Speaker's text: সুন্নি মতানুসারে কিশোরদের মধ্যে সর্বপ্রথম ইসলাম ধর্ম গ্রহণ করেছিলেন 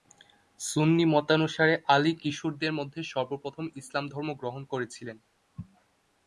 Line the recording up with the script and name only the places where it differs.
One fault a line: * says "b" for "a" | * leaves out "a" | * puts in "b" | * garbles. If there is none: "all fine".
* puts in "আলী"